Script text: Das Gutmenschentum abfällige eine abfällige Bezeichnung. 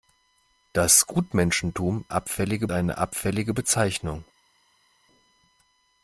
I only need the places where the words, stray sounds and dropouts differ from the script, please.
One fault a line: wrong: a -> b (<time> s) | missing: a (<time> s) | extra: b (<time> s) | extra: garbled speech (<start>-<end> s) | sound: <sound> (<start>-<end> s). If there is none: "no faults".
no faults